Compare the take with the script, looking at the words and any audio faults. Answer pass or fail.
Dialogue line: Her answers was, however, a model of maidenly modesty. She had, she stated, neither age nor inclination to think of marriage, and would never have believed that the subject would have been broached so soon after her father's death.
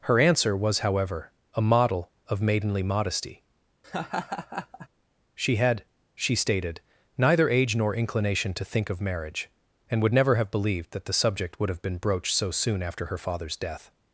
fail